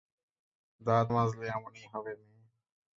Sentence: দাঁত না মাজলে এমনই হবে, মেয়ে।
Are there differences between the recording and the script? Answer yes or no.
yes